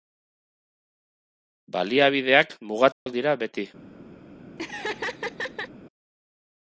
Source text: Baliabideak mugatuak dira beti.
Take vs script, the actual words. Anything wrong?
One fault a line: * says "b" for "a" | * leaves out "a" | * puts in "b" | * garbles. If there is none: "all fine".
all fine